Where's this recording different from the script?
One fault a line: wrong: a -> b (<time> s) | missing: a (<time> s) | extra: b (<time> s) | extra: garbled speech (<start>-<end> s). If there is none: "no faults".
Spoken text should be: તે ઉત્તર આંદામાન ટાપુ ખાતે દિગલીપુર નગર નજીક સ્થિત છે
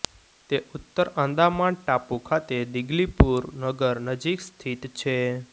no faults